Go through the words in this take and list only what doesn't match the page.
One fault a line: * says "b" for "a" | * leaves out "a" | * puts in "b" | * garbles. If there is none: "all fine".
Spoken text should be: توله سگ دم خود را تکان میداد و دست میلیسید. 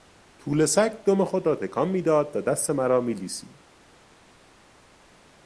* puts in "مرا"